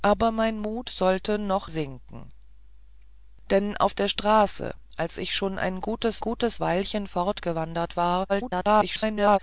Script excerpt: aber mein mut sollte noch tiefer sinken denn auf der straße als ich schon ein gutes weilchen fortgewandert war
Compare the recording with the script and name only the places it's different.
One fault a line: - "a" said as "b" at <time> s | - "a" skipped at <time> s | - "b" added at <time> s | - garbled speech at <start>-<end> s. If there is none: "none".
- "tiefer" skipped at 1.7 s
- "gutes" added at 6.2 s
- garbled speech at 8.3-9.4 s